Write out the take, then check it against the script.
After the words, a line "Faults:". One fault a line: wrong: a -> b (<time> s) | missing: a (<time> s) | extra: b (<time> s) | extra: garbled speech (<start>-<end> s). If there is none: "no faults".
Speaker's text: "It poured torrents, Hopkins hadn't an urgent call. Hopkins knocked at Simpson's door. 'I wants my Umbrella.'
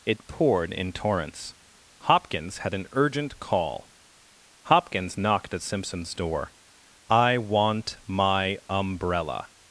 "It poured in torrents, Hopkins had an urgent call. Hopkins knocked at Simpson's door. 'I want my Umbrella.'
Faults:
extra: in (0.7 s)
wrong: hadn't -> had (2.6 s)
wrong: wants -> want (7.4 s)